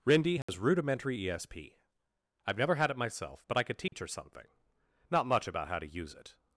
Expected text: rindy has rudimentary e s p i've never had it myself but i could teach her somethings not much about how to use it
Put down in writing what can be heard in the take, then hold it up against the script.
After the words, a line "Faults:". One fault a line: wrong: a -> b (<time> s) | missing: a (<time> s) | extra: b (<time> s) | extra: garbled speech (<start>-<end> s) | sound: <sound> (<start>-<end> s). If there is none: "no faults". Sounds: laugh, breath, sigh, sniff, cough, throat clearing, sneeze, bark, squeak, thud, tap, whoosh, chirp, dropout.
rindy has rudimentary e s p i've never had it myself but i could teach her something not much about how to use it
Faults:
sound: dropout (0.4-0.5 s)
sound: dropout (3.9-3.9 s)
wrong: somethings -> something (4.1 s)